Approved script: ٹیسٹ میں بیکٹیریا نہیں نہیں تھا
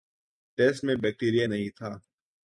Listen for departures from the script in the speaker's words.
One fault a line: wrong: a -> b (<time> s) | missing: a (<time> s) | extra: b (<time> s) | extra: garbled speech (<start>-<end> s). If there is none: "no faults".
missing: نہیں (1.7 s)